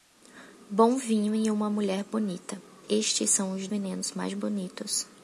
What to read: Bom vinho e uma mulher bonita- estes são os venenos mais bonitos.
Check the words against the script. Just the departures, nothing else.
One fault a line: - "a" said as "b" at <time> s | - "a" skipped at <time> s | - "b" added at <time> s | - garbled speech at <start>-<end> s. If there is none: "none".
none